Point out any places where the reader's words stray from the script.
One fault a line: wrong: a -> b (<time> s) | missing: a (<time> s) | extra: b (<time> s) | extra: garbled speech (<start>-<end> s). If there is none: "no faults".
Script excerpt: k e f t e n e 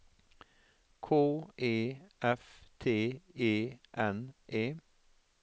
no faults